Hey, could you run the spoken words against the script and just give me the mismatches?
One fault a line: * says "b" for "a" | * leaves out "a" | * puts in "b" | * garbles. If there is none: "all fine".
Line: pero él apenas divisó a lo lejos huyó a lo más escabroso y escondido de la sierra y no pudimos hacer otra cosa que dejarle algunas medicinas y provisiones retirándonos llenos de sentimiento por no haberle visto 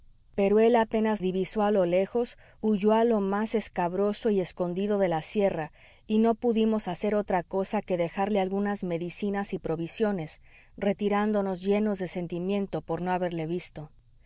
all fine